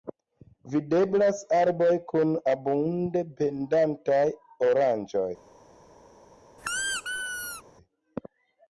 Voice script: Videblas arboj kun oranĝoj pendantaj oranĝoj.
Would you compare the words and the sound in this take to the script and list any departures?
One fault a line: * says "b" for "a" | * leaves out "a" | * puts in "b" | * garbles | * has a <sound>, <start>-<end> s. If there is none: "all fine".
* says "abunde" for "oranĝoj"
* has a squeak, 6.6-7.6 s